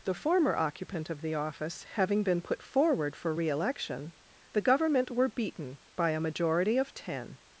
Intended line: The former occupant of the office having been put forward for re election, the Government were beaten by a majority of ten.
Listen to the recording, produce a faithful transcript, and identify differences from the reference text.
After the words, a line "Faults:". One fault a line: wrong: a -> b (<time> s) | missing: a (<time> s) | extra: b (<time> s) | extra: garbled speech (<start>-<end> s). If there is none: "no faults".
The former occupant of the office having been put forward for re election, the Government were beaten by a majority of ten.
Faults:
no faults